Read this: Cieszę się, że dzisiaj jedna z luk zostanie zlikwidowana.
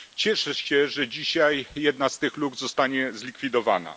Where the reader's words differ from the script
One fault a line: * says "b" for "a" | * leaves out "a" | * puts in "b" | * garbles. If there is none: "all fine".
* puts in "tych"